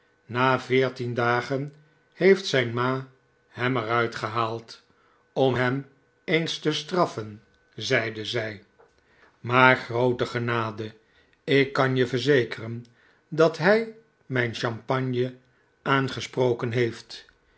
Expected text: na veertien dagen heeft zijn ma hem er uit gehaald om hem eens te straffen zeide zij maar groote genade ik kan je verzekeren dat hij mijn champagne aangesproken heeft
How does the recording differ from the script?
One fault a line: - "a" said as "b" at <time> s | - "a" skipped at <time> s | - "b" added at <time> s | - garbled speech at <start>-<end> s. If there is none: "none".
none